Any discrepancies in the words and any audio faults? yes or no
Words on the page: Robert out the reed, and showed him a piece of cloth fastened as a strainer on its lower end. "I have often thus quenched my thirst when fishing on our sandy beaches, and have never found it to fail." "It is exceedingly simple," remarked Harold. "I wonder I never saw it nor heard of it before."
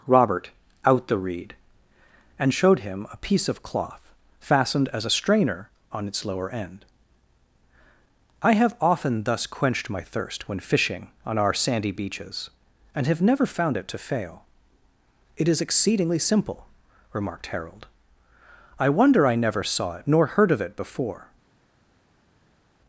no